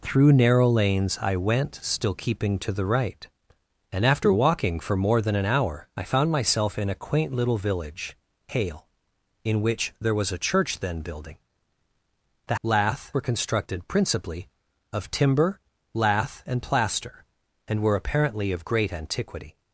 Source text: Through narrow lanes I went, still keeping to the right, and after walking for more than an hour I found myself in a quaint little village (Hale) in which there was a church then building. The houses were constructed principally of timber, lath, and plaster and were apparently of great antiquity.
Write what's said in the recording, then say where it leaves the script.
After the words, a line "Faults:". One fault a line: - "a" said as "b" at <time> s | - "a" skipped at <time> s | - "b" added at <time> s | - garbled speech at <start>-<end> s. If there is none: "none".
Through narrow lanes I went, still keeping to the right, and after walking for more than an hour I found myself in a quaint little village (Hale) in which there was a church then building. The lath were constructed principally of timber, lath, and plaster and were apparently of great antiquity.
Faults:
- "houses" said as "lath" at 12.6 s